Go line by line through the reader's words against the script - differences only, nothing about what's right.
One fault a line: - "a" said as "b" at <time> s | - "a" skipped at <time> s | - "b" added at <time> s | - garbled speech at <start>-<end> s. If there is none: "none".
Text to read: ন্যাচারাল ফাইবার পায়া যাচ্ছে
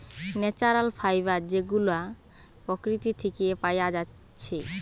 - "যেগুলা প্রকৃতি থিকে" added at 1.5 s